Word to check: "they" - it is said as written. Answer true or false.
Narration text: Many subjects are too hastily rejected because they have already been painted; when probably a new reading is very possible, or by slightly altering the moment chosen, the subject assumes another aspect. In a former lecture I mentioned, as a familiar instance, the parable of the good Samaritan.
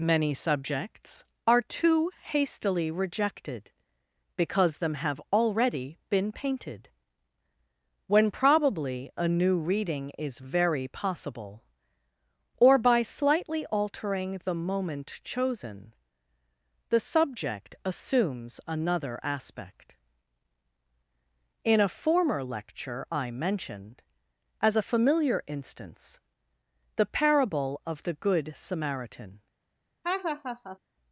false